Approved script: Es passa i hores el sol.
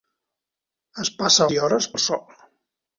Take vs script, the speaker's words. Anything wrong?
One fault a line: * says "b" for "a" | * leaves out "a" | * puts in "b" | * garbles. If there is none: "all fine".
all fine